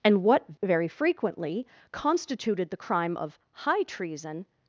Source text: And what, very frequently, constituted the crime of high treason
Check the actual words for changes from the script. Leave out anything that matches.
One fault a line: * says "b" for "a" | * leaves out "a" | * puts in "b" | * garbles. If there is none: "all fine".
all fine